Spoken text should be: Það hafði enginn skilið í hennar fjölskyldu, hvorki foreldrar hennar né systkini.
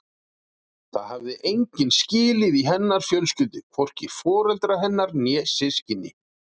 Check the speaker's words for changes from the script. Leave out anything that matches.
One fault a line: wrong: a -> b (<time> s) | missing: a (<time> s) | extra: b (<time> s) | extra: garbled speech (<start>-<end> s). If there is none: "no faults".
no faults